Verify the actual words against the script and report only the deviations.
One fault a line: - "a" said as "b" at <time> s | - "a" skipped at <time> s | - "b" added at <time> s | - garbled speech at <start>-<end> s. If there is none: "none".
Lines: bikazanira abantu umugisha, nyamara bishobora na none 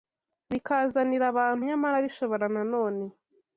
- "umugisha" skipped at 1.6 s